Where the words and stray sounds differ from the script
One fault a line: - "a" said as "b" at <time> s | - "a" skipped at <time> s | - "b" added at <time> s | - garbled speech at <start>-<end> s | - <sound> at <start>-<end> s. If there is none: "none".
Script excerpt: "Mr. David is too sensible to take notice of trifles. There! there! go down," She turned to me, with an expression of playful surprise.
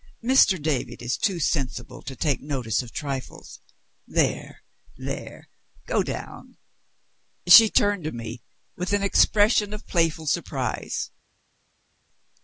none